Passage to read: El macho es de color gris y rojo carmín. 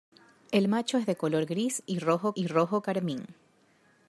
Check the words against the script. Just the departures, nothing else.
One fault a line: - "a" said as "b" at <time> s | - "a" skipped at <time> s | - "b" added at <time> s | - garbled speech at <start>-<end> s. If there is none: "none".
- "y rojo" added at 2.3 s